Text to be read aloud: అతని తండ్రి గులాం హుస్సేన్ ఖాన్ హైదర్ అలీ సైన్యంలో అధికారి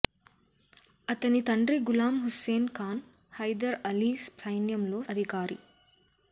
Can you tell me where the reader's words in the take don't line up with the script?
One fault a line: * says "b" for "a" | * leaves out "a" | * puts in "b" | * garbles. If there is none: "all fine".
all fine